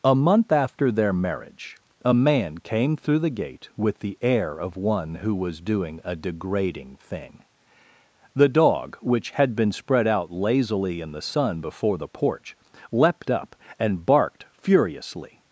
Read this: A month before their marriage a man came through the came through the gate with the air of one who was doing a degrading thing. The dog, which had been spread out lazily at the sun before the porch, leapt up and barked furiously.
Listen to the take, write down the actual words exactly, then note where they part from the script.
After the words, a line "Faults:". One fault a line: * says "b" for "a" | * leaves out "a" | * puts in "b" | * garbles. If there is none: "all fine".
A month after their marriage a man came through the gate with the air of one who was doing a degrading thing. The dog, which had been spread out lazily in the sun before the porch, leapt up and barked furiously.
Faults:
* says "after" for "before"
* leaves out "came through the"
* says "in" for "at"